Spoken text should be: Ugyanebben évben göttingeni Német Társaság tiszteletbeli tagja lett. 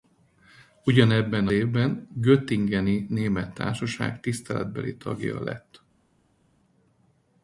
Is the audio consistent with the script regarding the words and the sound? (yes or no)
yes